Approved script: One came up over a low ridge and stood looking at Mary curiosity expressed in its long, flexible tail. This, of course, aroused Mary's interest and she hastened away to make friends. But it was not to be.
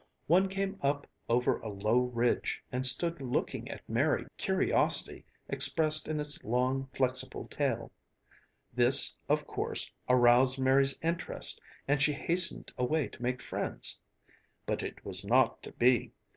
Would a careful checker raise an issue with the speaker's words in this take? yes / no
no